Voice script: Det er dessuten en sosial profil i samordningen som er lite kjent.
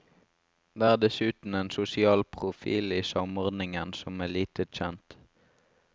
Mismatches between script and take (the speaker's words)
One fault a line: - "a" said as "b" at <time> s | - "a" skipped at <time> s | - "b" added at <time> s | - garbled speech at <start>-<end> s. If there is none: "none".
none